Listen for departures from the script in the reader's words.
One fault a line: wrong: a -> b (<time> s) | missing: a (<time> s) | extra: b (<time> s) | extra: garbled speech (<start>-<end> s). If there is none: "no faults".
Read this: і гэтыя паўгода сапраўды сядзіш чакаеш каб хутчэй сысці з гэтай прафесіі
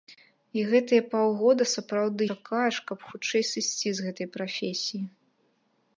missing: сядзіш (2.2 s)